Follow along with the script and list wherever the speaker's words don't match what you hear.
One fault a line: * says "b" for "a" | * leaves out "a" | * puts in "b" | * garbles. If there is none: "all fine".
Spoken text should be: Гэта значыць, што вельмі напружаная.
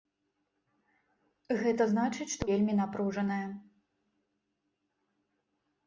all fine